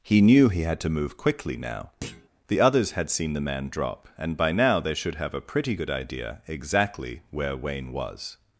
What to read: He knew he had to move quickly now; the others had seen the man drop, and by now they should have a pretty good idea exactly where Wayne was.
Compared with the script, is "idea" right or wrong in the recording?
right